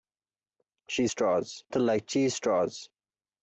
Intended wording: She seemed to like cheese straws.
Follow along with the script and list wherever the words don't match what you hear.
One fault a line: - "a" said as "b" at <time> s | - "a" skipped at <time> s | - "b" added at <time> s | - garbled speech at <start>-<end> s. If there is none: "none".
- "seemed" said as "straws" at 1.1 s